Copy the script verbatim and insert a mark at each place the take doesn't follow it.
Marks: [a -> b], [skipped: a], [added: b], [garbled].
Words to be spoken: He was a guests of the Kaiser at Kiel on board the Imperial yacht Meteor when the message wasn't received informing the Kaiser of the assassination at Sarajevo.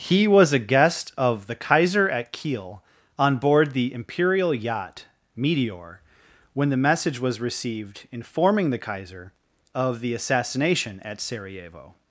He was a [guests -> guest] of the Kaiser at Kiel on board the Imperial yacht Meteor when the message [wasn't -> was] received informing the Kaiser of the assassination at Sarajevo.